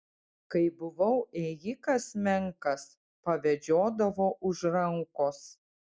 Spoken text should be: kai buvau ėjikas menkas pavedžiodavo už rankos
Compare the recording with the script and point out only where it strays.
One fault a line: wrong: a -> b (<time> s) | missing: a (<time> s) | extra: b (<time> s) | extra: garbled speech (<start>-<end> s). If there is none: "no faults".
no faults